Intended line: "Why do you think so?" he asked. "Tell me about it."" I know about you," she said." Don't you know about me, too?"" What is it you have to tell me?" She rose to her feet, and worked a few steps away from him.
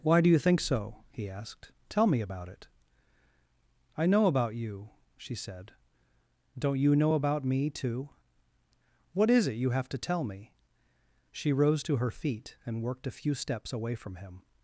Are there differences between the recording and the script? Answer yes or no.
no